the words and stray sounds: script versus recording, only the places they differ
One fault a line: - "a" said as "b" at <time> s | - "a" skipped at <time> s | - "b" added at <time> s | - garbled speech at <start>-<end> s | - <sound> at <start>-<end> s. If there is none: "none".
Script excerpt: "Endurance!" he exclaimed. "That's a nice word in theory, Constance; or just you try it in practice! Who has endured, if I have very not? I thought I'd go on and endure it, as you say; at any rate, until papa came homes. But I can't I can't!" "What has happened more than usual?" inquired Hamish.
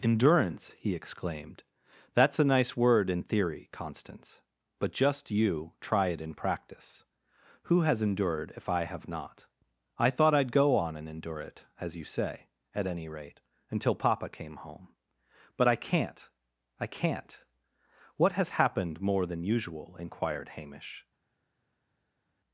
- "or" said as "but" at 4.8 s
- "very" skipped at 9.1 s
- "homes" said as "home" at 14.7 s